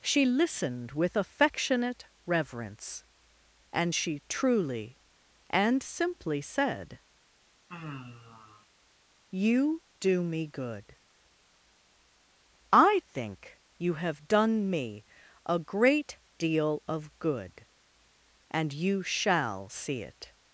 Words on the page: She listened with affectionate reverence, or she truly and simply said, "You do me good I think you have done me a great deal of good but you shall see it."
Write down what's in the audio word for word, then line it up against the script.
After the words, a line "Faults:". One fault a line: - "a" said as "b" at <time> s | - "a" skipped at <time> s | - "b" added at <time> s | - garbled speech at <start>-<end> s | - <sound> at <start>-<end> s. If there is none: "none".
She listened with affectionate reverence, and she truly and simply said, "You do me good I think you have done me a great deal of good and you shall see it."
Faults:
- "or" said as "and" at 3.7 s
- sigh at 7.7-8.7 s
- "but" said as "and" at 18.5 s